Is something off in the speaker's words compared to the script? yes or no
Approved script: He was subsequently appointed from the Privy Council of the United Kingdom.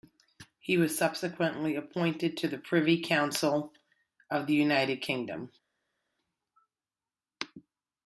yes